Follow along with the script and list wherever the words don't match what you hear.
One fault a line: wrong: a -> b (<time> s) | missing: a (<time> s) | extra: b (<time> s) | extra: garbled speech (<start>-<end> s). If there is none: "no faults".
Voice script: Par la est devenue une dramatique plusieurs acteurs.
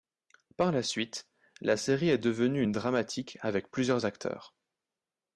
extra: suite la série (0.8 s)
extra: avec (3.4 s)